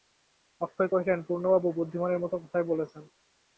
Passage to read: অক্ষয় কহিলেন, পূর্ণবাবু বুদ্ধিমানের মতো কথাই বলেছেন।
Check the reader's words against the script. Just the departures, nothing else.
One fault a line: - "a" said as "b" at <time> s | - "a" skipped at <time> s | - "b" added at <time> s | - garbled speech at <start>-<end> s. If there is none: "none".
none